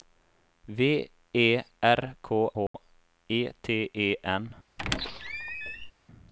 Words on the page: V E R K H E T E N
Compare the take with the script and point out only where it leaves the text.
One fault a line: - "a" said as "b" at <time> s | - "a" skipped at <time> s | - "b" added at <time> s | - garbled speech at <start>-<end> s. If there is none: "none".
none